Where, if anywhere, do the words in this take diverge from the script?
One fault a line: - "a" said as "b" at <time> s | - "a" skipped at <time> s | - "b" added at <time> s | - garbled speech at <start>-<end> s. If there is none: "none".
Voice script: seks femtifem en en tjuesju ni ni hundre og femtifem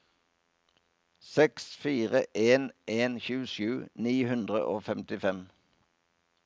- "femtifem" said as "fire" at 1.8 s
- "ni" skipped at 4.1 s